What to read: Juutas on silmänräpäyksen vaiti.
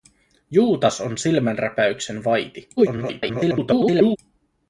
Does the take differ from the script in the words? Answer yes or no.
yes